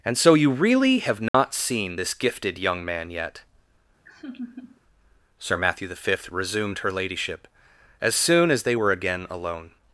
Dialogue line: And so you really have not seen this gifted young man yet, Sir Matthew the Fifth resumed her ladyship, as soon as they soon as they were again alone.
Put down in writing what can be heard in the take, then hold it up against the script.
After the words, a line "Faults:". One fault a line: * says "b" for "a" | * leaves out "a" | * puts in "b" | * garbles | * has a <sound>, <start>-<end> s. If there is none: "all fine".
And so you really have not seen this gifted young man yet, Sir Matthew the Fifth resumed her ladyship, as soon as they were again alone.
Faults:
* has a dropout, 1.3-1.3 s
* has a laugh, 4.1-4.8 s
* leaves out "soon as they"